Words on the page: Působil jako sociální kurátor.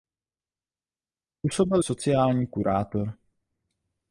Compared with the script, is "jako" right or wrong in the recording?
wrong